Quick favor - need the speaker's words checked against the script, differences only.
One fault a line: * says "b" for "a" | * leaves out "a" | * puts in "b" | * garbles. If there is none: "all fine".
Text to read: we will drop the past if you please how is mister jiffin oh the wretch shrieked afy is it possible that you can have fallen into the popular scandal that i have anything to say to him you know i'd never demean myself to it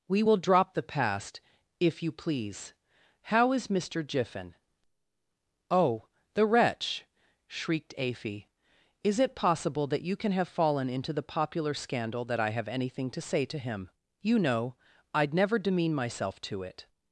all fine